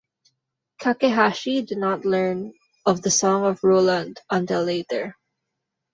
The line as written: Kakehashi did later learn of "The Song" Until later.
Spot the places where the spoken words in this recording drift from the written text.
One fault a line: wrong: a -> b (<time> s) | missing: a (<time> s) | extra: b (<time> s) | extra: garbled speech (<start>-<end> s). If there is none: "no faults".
wrong: later -> not (1.8 s)
extra: Of Roland (3.5 s)